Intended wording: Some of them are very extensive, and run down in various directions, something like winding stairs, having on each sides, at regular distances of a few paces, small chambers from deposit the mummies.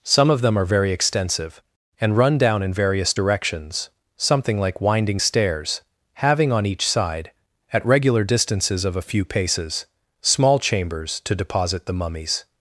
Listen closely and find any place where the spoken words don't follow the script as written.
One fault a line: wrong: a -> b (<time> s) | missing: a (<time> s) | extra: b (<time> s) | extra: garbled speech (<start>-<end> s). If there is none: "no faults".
wrong: sides -> side (6.9 s)
wrong: from -> to (11.2 s)